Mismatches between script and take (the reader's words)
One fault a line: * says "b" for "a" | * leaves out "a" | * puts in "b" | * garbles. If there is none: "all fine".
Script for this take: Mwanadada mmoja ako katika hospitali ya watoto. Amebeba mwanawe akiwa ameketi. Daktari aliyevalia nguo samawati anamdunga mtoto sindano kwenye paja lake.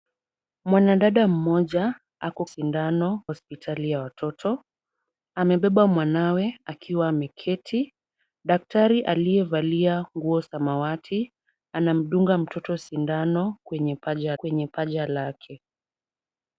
* says "sindano" for "katika"
* puts in "kwenye paja"